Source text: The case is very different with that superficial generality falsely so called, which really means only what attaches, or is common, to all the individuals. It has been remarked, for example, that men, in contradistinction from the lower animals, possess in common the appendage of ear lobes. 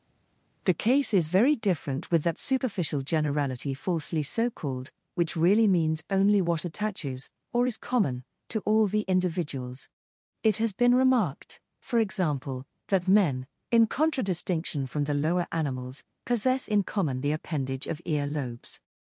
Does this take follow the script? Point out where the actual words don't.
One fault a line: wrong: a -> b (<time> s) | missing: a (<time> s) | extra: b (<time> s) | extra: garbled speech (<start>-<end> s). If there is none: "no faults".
no faults